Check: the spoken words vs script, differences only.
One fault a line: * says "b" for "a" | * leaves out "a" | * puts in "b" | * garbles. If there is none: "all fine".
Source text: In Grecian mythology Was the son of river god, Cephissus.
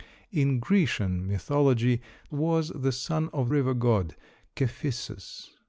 all fine